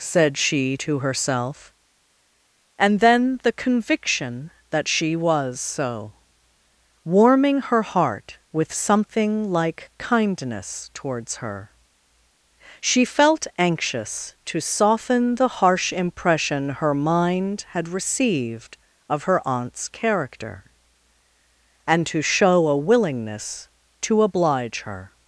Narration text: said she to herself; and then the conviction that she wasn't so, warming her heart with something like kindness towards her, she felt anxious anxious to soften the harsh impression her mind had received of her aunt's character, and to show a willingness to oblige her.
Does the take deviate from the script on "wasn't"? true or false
true